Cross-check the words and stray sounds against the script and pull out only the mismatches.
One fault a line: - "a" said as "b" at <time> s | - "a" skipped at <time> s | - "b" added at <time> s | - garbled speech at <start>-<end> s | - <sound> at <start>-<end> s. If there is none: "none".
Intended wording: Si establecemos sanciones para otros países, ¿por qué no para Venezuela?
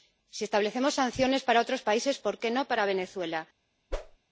- whoosh at 3.9-4.2 s